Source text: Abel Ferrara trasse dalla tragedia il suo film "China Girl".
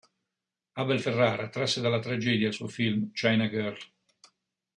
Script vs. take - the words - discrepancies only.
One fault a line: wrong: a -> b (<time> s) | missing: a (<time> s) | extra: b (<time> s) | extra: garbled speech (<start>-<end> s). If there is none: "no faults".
no faults